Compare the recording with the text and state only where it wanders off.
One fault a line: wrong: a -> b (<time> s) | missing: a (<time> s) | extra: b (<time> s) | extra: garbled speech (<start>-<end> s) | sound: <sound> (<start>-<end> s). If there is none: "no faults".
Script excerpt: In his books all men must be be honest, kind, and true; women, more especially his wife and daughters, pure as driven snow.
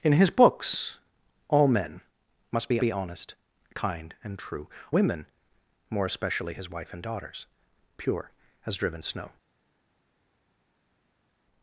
no faults